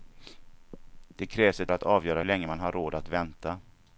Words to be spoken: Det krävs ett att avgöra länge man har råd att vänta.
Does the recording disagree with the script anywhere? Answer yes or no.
no